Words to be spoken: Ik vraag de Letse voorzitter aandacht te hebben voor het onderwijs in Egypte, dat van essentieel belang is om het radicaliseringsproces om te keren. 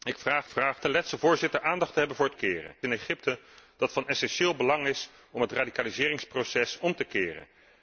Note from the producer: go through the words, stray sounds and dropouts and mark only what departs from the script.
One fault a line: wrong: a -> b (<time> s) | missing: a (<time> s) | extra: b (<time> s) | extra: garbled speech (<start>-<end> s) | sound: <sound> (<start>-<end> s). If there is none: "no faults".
extra: vraag (0.5 s)
wrong: onderwijs -> keren (2.3 s)